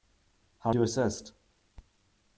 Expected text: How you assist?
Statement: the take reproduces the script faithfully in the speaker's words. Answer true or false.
true